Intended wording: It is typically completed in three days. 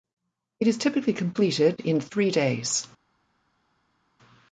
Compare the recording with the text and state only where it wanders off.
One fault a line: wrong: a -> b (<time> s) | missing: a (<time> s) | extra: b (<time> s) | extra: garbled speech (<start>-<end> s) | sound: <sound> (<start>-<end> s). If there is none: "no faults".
no faults